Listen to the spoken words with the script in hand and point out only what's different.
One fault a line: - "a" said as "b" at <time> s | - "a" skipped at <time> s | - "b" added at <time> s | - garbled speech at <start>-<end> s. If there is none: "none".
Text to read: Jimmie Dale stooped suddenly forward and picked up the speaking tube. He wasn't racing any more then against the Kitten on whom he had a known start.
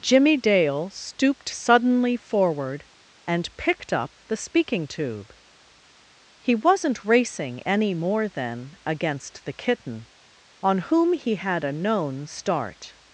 none